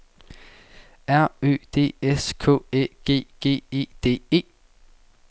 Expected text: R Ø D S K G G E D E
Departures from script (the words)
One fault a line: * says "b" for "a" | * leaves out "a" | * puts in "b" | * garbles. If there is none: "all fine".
* puts in "Æ"